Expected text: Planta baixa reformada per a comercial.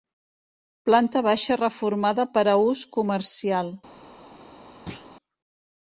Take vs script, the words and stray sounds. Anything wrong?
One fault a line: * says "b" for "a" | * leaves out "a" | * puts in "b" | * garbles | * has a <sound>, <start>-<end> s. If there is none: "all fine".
* puts in "ús"
* has a thud, 4.9-5.1 s